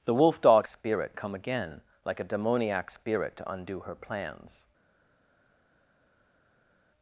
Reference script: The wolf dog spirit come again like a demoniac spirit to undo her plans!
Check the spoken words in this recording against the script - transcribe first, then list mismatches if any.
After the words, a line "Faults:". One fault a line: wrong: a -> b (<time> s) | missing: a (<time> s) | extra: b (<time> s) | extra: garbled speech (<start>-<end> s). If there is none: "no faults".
The wolf dog spirit come again like a demoniac spirit to undo her plans!
Faults:
no faults